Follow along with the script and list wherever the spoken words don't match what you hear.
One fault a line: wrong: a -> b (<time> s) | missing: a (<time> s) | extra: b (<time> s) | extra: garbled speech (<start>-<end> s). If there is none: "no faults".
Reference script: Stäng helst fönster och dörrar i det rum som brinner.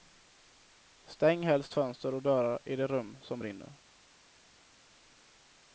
no faults